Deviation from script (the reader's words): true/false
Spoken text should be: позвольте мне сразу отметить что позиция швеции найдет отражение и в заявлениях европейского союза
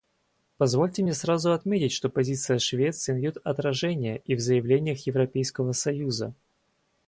false